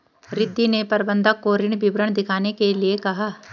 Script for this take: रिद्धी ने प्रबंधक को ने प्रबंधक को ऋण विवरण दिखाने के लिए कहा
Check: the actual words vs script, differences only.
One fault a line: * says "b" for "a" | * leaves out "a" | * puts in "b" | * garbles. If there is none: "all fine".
* leaves out "ने प्रबंधक को"